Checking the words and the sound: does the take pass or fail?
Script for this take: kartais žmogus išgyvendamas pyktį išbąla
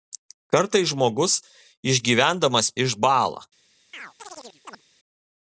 fail